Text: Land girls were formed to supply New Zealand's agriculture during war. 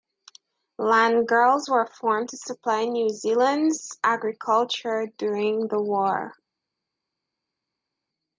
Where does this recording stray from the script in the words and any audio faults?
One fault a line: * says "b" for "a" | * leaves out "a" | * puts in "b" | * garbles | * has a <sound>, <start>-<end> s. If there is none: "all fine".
* puts in "the"